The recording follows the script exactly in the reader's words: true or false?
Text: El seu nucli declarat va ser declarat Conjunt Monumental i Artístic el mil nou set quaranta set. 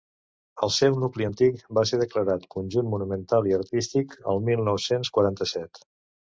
false